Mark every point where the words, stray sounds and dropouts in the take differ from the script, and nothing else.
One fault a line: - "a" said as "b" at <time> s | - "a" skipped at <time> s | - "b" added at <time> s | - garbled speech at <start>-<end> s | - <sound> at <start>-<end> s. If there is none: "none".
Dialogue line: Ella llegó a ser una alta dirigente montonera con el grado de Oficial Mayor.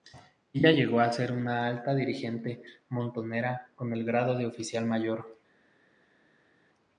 none